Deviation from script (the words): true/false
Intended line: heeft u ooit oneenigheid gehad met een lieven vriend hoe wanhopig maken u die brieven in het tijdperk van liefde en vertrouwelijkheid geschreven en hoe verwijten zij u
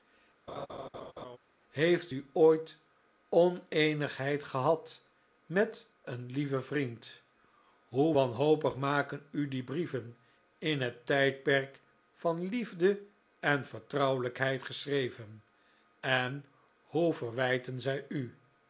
false